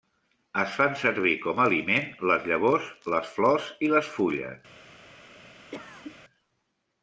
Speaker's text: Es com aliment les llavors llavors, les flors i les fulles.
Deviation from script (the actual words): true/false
true